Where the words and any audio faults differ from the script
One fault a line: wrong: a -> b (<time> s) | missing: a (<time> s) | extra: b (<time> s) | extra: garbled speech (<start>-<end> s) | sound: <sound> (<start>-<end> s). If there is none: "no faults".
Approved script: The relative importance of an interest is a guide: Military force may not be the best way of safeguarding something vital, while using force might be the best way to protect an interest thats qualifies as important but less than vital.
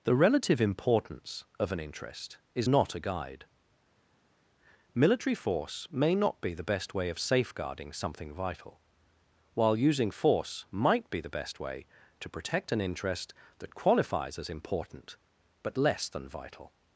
extra: not (2.6 s)
wrong: thats -> that (13.6 s)